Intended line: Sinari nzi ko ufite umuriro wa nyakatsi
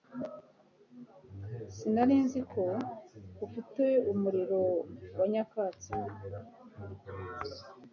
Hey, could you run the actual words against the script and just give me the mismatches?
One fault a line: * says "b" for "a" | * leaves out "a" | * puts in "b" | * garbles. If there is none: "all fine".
all fine